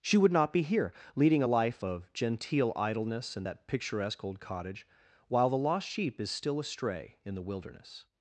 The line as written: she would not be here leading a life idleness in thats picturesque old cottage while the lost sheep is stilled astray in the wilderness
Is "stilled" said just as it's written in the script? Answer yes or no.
no